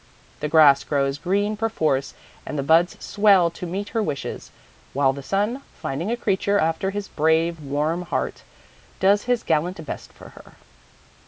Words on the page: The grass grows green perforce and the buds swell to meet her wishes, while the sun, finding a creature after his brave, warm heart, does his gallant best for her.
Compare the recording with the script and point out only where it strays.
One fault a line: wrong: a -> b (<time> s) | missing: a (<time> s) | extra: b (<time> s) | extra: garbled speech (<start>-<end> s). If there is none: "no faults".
no faults